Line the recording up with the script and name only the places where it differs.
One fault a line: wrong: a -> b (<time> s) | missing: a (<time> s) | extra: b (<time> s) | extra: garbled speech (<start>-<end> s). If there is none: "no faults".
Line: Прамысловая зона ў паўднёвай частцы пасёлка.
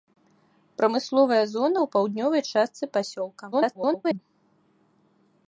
extra: garbled speech (3.5-4.2 s)